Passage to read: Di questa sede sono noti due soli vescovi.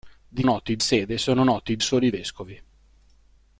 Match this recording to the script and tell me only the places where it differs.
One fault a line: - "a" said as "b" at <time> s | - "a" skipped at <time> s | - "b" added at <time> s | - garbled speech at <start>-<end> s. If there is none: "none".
- "questa" said as "noti" at 0.4 s
- "due" skipped at 1.8 s